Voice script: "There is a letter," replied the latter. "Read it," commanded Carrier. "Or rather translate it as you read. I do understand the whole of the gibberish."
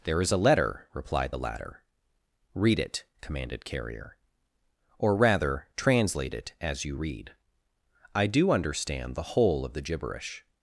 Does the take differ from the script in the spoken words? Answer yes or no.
no